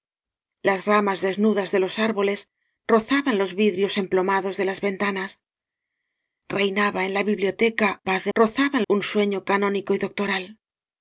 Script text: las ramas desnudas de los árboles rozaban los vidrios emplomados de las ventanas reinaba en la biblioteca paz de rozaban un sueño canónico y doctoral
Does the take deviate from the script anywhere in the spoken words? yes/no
no